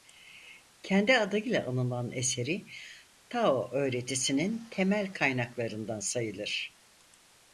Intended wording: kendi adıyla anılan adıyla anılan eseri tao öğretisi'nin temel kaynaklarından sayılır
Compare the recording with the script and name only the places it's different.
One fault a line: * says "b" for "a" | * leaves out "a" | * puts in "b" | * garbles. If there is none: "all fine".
* leaves out "adıyla anılan"